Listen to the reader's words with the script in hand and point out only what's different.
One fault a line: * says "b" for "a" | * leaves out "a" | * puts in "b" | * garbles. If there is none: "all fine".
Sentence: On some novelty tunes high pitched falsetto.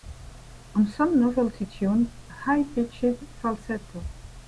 all fine